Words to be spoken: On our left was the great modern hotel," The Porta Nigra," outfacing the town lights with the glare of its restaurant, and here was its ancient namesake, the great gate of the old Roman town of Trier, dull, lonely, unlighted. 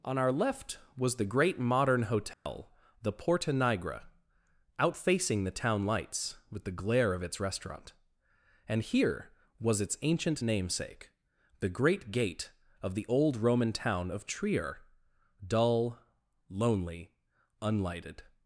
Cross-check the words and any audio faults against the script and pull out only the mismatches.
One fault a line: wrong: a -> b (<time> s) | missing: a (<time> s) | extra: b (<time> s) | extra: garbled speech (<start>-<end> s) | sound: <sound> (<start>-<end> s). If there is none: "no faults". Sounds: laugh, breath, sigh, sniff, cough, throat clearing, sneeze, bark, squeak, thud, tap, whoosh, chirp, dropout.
sound: dropout (2.3-2.5 s)